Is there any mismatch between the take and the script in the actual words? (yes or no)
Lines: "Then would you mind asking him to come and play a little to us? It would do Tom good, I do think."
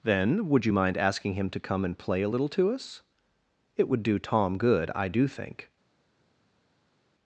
no